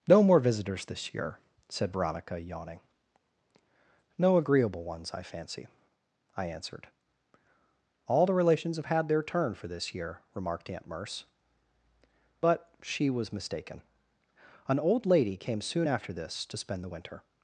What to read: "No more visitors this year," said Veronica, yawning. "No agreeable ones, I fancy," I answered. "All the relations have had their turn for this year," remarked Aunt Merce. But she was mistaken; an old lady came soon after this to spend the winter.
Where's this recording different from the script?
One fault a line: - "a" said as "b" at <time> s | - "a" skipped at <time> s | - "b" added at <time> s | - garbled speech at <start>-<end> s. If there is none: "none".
none